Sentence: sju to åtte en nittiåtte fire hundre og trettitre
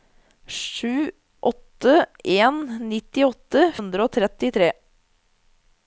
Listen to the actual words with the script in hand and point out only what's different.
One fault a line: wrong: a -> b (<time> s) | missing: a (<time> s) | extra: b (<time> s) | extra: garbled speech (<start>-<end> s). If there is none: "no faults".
missing: to (1.1 s)
missing: fire (3.7 s)